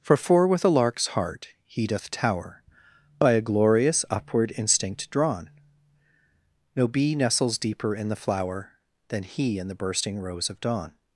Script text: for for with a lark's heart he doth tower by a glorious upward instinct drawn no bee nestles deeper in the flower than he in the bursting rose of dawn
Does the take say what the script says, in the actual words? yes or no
yes